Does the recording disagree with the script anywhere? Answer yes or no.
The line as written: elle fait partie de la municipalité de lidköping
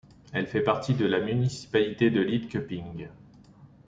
no